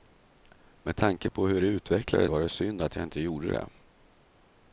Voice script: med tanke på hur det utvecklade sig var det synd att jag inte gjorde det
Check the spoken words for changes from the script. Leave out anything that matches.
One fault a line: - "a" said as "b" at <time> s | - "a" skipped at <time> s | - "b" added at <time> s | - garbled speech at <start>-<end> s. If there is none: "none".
- "sig" skipped at 2.3 s